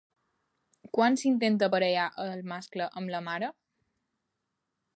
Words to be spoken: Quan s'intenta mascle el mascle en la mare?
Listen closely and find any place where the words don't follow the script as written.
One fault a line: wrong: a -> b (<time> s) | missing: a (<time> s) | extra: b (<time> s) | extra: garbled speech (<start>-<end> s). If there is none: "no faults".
wrong: mascle -> aparellar (1.7 s)
wrong: en -> amb (3.0 s)